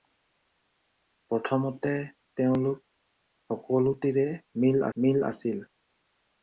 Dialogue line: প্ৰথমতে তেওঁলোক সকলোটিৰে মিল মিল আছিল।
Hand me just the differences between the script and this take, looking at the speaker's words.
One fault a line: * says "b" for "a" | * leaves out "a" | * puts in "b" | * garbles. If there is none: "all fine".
all fine